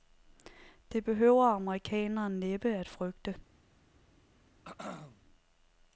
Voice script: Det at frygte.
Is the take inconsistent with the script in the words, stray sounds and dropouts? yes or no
yes